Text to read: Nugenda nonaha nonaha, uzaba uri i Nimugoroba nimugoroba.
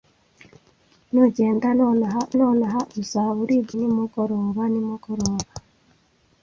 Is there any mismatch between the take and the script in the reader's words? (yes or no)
no